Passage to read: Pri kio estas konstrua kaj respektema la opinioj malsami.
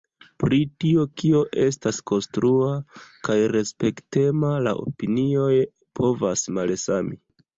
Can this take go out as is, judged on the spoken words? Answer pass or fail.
fail